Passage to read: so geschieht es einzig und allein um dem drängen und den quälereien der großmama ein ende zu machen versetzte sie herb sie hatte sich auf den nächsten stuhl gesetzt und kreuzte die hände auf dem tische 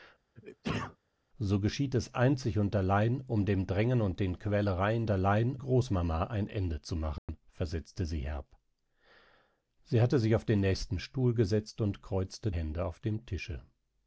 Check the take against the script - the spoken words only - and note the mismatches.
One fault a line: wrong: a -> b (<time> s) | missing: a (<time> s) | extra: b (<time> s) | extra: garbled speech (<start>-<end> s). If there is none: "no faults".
wrong: der -> allein (5.1 s)
missing: die (12.5 s)